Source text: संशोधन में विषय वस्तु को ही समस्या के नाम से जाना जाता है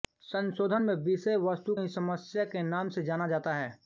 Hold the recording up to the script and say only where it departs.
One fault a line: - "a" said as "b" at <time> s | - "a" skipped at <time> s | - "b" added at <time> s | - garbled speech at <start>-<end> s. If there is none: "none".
- "को" skipped at 1.7 s